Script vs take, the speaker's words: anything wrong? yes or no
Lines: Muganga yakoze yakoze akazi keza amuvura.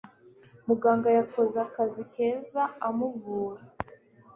yes